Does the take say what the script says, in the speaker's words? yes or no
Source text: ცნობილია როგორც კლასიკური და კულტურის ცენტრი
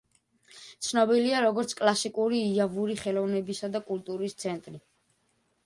no